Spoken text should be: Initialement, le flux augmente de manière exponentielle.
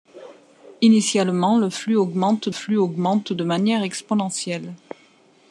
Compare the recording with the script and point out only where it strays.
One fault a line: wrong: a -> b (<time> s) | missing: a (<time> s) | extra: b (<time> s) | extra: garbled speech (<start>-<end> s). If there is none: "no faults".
extra: flux augmente (2.5 s)